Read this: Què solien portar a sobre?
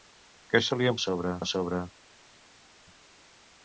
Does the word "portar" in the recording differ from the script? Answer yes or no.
yes